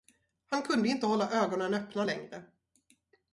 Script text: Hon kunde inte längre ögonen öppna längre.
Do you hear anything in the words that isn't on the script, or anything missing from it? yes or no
yes